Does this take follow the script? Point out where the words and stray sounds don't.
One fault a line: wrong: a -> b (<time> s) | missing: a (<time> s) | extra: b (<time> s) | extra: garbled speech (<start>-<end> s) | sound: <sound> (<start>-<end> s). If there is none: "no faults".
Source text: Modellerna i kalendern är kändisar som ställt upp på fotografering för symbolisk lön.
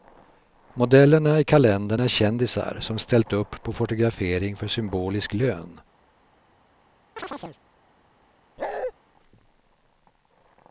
sound: chirp (7.2-7.6 s)
sound: bark (8.6-8.9 s)